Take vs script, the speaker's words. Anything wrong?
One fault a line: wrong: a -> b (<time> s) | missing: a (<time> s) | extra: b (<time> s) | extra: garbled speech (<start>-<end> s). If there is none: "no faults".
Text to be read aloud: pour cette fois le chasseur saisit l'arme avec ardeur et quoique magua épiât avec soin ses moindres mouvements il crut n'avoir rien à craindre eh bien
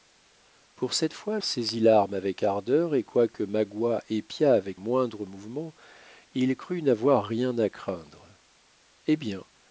missing: le chasseur (1.4 s)
missing: soin ses (4.8 s)